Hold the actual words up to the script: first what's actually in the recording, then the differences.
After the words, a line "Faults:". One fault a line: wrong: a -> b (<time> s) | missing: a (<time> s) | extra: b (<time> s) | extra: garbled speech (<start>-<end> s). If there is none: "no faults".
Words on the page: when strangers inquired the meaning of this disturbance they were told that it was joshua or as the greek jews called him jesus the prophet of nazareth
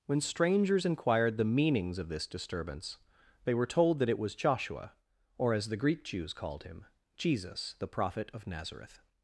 when strangers inquired the meanings of this disturbance they were told that it was joshua or as the greek jews called him jesus the prophet of nazareth
Faults:
wrong: meaning -> meanings (1.4 s)